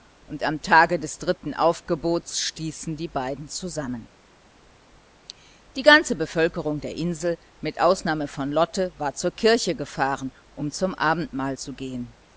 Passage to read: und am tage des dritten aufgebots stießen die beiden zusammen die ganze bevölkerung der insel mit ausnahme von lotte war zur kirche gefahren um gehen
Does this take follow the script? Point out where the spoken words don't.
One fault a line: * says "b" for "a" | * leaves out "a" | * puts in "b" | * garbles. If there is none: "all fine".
* puts in "zum abendmahl zu"